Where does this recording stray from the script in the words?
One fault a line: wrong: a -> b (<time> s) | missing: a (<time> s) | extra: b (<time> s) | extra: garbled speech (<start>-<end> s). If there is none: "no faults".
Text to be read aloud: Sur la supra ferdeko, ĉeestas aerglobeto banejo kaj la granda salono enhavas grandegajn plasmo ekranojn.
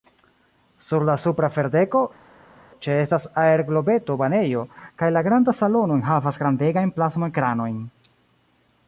no faults